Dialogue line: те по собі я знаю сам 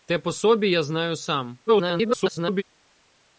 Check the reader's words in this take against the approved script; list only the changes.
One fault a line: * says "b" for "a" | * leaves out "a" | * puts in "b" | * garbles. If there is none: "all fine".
* garbles